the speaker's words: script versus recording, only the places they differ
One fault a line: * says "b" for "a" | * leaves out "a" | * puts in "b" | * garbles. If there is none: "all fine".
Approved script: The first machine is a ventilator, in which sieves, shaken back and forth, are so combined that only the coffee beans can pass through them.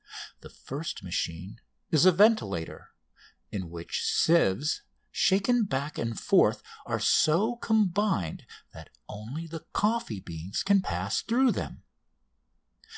all fine